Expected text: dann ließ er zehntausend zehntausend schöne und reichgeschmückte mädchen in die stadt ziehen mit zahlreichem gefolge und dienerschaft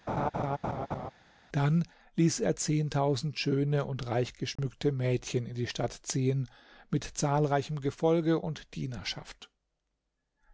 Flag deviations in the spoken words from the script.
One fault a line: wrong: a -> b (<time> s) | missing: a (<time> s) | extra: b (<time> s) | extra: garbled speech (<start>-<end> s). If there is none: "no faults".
missing: zehntausend (3.4 s)